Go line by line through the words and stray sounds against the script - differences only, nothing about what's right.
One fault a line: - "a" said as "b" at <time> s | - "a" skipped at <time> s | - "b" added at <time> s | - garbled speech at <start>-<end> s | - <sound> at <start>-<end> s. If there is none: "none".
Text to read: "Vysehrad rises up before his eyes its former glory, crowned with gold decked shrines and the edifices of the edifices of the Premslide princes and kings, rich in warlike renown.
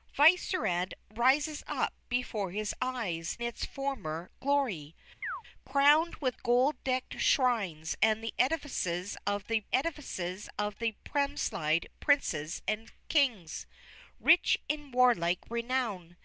- chirp at 5.2-5.4 s